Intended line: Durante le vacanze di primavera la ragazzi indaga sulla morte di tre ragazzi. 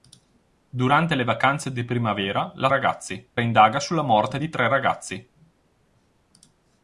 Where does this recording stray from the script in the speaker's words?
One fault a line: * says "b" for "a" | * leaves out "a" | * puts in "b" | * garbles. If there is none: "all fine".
all fine